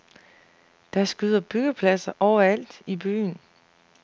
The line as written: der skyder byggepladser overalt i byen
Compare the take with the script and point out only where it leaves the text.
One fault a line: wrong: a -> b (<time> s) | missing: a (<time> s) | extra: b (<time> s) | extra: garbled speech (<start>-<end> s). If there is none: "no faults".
no faults